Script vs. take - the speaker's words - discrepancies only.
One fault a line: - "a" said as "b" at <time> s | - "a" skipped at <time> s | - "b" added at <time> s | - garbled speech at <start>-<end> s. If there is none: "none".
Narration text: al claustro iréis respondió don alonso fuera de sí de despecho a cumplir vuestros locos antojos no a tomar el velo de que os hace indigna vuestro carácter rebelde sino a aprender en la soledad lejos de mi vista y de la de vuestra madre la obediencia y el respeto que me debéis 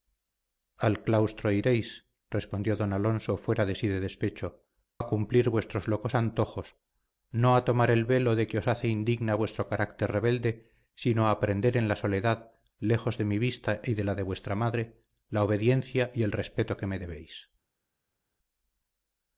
none